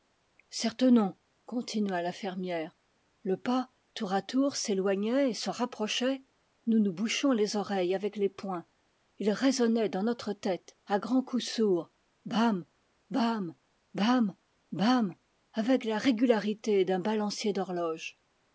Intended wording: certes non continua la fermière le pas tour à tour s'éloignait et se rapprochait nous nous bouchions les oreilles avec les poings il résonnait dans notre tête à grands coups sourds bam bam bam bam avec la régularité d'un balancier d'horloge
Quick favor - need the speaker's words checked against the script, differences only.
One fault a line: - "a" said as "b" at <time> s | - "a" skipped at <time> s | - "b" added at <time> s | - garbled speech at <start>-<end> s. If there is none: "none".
none